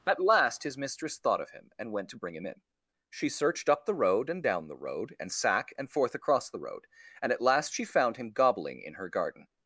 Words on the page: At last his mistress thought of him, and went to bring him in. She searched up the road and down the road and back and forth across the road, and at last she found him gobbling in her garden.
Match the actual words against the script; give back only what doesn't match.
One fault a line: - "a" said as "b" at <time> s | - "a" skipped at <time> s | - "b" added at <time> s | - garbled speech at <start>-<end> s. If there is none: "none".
- "back" said as "sack" at 5.3 s